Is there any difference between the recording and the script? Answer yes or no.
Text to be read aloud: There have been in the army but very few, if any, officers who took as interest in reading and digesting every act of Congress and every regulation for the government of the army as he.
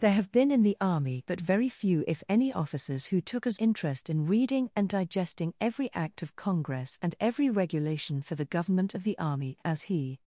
no